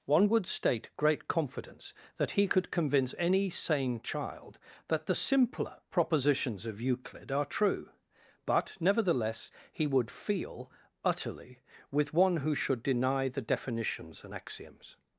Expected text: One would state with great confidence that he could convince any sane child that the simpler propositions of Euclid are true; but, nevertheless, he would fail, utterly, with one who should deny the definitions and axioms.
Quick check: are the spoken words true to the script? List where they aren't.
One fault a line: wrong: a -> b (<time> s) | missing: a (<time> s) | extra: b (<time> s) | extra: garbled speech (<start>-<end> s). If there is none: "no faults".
missing: with (0.9 s)
wrong: fail -> feel (10.1 s)